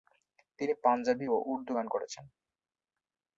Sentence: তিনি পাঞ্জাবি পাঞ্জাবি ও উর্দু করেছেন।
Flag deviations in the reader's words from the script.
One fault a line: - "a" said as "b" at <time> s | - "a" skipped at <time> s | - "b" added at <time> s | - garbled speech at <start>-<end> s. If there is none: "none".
- "পাঞ্জাবি" skipped at 1.3 s
- "গান" added at 1.7 s